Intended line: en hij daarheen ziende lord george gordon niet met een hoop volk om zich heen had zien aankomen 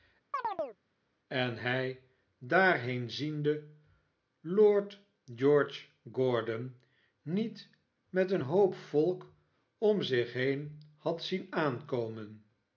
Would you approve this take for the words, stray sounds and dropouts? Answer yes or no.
no